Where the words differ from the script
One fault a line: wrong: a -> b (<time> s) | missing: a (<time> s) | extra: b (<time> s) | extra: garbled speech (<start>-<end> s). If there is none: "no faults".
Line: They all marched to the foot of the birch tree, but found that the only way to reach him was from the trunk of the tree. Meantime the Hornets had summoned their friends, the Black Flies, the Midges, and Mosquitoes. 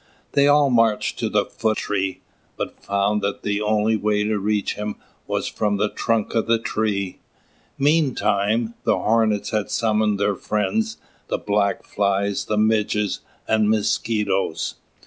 missing: of the birch (1.8 s)